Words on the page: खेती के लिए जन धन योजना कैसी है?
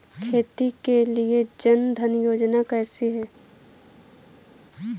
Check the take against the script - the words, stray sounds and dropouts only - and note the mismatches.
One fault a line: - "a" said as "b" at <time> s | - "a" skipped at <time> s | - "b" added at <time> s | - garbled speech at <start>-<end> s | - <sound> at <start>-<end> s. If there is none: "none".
none